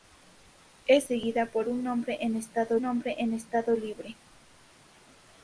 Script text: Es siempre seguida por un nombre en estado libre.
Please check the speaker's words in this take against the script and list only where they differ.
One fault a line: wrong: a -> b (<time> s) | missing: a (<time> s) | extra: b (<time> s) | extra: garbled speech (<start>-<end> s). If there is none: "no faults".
missing: siempre (1.0 s)
extra: nombre en estado (2.8 s)